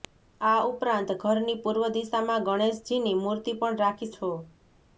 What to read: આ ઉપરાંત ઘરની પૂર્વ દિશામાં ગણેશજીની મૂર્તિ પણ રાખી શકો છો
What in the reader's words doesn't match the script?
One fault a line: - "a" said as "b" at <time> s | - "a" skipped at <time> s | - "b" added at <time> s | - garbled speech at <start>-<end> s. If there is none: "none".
- "શકો" skipped at 4.1 s